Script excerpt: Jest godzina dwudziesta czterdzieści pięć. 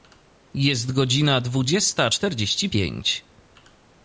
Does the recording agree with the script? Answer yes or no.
yes